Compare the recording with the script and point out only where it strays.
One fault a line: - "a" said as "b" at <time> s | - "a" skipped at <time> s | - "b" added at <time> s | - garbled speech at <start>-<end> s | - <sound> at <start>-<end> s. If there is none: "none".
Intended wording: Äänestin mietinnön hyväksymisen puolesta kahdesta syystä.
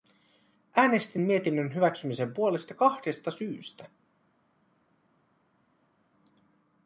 none